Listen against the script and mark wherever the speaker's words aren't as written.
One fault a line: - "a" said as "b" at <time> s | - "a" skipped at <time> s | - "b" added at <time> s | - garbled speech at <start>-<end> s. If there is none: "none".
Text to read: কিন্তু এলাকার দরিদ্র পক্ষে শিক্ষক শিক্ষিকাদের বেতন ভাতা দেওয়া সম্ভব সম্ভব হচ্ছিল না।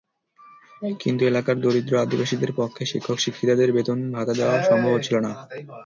- "আদিবাসীদের" added at 2.0 s
- "সম্ভব" skipped at 4.9 s